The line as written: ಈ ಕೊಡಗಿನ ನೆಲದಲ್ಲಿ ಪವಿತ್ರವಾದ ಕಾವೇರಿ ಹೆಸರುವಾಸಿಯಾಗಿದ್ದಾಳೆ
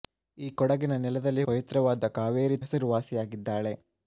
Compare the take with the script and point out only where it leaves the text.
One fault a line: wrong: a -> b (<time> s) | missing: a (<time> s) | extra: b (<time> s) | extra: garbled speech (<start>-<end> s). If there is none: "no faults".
no faults